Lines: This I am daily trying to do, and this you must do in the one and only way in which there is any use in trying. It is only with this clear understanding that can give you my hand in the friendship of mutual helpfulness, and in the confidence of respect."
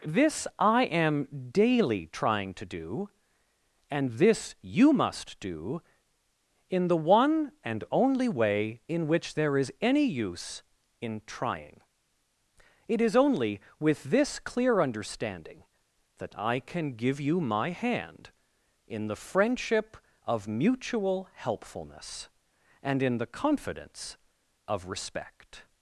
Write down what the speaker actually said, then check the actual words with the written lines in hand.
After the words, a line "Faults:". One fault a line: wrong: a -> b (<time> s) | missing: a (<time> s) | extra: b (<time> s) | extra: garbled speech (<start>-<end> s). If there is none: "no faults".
This I am daily trying to do, and this you must do in the one and only way in which there is any use in trying. It is only with this clear understanding that I can give you my hand in the friendship of mutual helpfulness, and in the confidence of respect."
Faults:
extra: I (16.4 s)